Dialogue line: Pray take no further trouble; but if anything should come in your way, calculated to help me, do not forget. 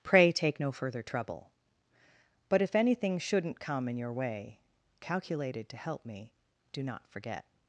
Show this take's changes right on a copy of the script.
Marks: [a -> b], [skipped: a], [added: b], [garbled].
Pray take no further trouble; but if anything [should -> shouldn't] come in your way, calculated to help me, do not forget.